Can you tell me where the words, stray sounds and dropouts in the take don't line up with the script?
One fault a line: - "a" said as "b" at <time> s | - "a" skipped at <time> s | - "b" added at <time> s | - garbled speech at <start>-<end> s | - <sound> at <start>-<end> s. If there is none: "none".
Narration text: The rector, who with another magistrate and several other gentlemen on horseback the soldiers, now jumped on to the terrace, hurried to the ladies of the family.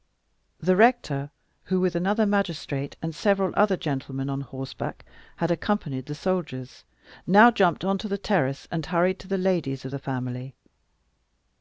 - "had accompanied" added at 5.3 s
- "and" added at 8.7 s